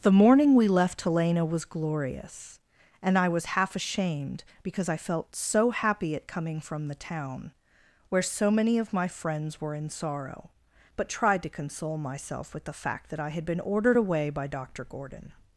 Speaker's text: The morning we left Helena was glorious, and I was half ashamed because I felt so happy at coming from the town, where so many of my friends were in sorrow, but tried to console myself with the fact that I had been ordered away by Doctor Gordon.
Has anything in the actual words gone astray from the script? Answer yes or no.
no